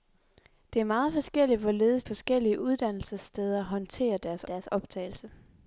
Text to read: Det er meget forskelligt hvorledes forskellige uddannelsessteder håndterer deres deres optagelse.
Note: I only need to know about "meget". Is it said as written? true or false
true